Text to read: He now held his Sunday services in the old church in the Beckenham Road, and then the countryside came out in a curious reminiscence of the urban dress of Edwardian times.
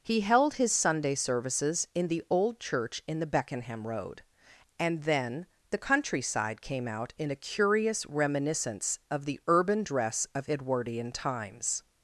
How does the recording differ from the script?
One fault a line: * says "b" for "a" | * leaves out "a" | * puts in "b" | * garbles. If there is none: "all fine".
* leaves out "now"